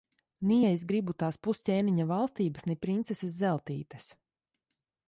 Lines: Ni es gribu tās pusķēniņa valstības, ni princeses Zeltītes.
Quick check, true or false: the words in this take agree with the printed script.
true